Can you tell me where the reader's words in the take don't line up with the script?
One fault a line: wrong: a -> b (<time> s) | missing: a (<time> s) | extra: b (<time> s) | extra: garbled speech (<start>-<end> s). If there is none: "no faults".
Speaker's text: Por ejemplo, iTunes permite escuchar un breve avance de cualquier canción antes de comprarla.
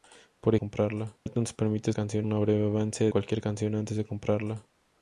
wrong: ejemplo -> comprarla (0.5 s)
wrong: escuchar -> canción (1.9 s)
missing: de (3.1 s)